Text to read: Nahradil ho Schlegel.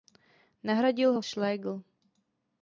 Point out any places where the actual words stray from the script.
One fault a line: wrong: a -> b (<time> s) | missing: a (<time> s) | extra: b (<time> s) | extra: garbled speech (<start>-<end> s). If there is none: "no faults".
no faults